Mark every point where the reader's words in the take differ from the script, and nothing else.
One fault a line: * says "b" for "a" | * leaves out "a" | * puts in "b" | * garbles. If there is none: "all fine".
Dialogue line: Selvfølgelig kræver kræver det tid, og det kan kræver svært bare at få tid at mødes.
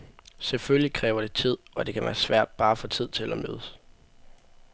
* leaves out "kræver"
* says "være" for "kræver"
* puts in "til"